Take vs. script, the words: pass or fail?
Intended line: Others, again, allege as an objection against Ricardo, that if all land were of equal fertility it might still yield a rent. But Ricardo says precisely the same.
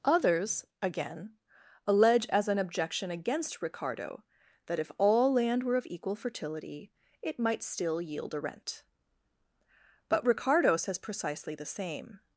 pass